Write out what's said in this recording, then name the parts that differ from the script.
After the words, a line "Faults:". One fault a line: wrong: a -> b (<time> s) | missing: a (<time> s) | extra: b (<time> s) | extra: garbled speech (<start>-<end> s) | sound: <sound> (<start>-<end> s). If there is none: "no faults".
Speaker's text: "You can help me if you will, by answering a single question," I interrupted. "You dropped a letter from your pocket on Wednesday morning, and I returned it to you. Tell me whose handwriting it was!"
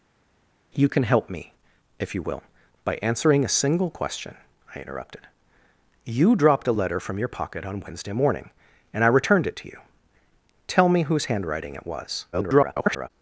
"You can help me if you will, by answering a single question," I interrupted. "You dropped a letter from your pocket on Wednesday morning, and I returned it to you. Tell me whose handwriting it was!" [garbled]
Faults:
extra: garbled speech (12.3-13.1 s)